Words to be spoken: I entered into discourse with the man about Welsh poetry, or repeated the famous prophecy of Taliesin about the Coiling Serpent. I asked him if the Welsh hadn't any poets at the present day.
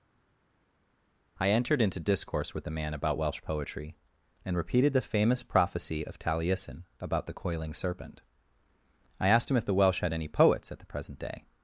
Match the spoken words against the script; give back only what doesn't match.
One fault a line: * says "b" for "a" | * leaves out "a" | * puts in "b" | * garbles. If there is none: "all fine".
* says "and" for "or"
* says "had" for "hadn't"